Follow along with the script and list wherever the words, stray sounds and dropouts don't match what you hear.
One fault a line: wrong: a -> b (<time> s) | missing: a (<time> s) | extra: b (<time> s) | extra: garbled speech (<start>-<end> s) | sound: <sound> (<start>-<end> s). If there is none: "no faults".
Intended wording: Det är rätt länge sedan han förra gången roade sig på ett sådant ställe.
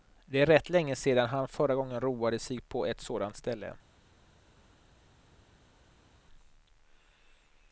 no faults